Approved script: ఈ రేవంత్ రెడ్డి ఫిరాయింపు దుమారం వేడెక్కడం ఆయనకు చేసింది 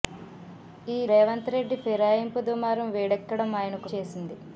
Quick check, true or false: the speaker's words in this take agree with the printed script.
true